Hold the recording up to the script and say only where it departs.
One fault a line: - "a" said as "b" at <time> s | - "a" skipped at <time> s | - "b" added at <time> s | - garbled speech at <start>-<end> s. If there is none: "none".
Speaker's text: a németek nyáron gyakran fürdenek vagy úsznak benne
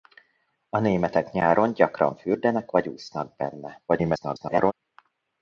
- garbled speech at 3.9-4.7 s